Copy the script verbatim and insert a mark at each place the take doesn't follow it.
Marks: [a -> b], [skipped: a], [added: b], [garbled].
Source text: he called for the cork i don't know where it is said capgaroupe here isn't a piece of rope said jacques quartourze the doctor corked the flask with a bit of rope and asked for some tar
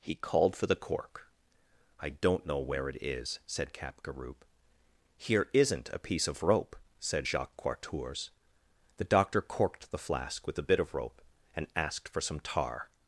he called for the cork i don't know where it is said capgaroupe here isn't a piece of rope said jacques quartourze the doctor corked the flask with a bit of rope and asked for some tar